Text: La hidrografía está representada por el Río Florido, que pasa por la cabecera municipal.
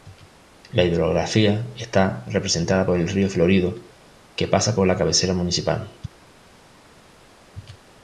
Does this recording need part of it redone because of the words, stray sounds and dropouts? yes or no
no